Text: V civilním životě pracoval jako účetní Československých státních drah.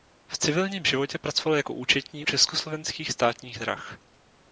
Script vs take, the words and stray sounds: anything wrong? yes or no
no